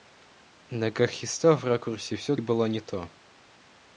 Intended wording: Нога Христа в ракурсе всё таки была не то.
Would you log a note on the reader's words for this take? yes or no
yes